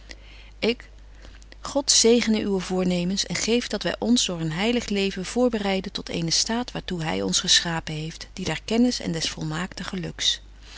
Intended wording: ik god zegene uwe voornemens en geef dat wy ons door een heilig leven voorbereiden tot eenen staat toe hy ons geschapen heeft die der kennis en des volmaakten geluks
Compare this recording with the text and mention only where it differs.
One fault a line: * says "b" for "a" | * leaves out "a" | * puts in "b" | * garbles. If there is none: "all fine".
* puts in "waar"